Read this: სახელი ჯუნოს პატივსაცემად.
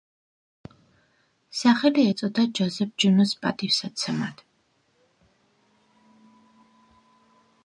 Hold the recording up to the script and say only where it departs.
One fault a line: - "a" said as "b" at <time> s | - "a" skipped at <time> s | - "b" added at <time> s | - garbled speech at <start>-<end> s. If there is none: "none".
- "ეწოდა ჯოზეფ" added at 2.1 s